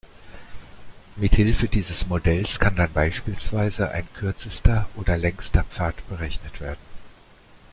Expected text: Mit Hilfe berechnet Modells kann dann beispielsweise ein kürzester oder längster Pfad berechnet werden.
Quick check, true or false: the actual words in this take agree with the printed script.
false